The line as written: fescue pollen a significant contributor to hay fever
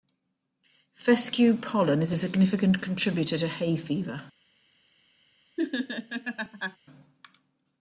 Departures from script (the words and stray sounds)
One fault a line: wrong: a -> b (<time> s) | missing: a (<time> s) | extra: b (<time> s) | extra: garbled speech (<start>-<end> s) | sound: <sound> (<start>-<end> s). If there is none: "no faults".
extra: is (2.0 s)
sound: laugh (5.6-6.8 s)